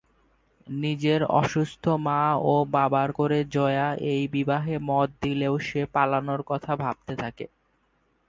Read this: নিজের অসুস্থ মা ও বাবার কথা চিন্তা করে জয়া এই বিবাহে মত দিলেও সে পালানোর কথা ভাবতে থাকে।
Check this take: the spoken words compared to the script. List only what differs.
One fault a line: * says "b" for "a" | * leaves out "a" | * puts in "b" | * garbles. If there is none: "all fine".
* leaves out "কথা চিন্তা"